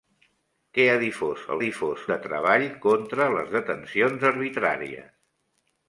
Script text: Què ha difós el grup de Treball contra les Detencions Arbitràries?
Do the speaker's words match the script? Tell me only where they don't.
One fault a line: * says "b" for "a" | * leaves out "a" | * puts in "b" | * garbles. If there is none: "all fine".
* says "difós" for "grup"